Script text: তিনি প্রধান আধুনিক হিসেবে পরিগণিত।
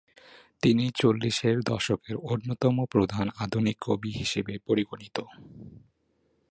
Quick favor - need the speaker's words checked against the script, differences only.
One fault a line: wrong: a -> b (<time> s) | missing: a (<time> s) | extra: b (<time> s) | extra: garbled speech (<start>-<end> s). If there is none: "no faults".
extra: চল্লিশের দশকের অন্যতম (0.9 s)
extra: কবি (3.8 s)